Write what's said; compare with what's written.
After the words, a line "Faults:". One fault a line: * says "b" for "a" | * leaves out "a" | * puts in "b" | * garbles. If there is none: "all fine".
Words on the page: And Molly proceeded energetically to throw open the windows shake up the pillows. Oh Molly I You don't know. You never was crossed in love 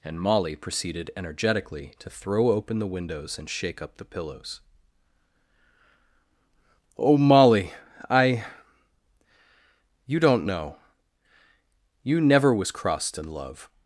And Molly proceeded energetically to throw open the windows and shake up the pillows. Oh Molly I You don't know. You never was crossed in love
Faults:
* puts in "and"